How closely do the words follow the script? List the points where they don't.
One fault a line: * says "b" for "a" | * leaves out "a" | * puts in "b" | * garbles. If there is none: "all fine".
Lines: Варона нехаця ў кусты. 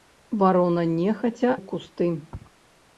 all fine